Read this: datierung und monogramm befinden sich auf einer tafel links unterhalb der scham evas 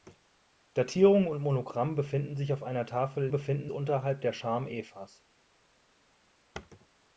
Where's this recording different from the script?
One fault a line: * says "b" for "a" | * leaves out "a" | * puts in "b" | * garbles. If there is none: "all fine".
* says "befinden" for "links"